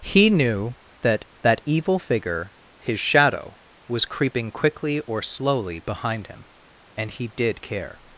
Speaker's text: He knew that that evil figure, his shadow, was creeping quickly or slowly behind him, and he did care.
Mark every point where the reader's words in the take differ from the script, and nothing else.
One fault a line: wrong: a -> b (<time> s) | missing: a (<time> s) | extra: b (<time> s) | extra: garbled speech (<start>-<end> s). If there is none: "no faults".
no faults